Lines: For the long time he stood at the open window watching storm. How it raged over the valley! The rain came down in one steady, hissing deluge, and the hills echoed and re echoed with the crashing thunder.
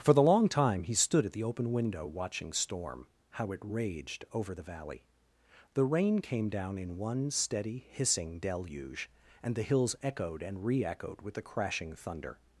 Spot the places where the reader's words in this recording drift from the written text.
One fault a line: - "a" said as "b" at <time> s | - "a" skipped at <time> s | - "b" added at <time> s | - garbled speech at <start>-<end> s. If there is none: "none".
none